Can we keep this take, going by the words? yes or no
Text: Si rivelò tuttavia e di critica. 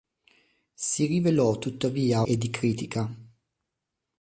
yes